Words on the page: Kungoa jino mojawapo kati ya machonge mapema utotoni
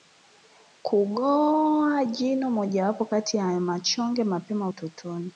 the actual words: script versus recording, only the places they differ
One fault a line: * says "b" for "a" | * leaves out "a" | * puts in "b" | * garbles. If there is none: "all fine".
all fine